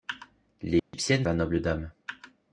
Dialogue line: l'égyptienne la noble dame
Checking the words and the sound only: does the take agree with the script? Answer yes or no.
no